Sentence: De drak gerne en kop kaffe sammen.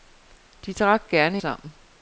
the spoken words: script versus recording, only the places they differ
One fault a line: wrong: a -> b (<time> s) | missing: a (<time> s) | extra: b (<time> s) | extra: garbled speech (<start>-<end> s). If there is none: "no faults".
missing: en kop kaffe (1.4 s)